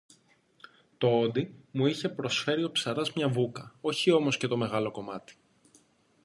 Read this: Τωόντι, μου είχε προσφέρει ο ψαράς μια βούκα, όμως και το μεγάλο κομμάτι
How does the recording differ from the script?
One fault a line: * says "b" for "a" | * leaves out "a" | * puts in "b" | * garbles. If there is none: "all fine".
* puts in "όχι"